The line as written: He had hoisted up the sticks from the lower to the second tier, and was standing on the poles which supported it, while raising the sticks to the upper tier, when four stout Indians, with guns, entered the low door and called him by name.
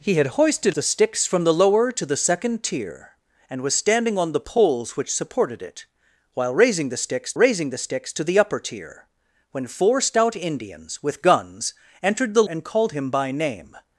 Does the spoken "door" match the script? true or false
false